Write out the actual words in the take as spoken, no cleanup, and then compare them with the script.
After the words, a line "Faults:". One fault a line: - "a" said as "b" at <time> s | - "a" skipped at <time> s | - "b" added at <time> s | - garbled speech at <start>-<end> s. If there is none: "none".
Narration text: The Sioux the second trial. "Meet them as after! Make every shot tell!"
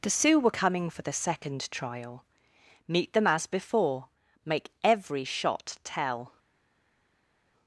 The Sioux were coming for the second trial. "Meet them as before! Make every shot tell!"
Faults:
- "were coming for" added at 0.4 s
- "after" said as "before" at 3.5 s